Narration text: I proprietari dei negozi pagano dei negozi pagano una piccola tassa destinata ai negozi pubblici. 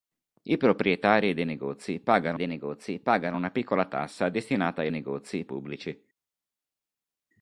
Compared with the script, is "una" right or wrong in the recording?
right